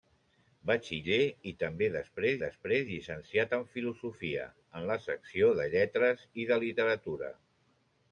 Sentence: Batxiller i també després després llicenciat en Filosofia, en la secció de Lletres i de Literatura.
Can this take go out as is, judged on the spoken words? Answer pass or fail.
pass